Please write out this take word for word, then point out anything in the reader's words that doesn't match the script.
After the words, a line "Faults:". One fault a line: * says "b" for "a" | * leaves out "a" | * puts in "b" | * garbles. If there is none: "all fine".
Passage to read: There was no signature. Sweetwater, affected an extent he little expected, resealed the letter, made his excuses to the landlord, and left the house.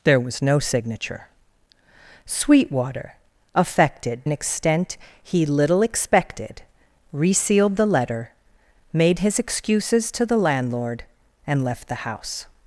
There was no signature. Sweetwater, affected an extent he little expected, resealed the letter, made his excuses to the landlord, and left the house.
Faults:
all fine